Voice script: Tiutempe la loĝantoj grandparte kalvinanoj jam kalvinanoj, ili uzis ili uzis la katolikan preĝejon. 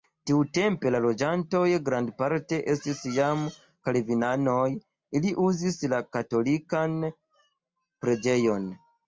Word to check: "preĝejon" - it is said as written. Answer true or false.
true